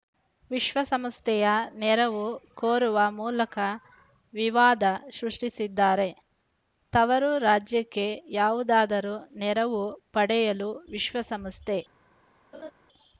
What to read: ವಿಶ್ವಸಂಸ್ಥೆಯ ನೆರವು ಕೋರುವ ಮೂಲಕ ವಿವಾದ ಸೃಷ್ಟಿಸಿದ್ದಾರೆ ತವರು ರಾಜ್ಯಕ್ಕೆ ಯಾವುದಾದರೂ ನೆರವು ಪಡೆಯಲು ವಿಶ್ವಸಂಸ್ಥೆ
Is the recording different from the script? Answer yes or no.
no